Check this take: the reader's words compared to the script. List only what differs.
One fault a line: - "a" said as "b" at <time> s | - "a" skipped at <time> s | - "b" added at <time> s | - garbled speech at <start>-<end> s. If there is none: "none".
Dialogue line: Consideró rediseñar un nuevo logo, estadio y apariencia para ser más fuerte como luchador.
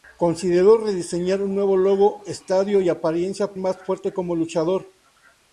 - "para ser" skipped at 3.5 s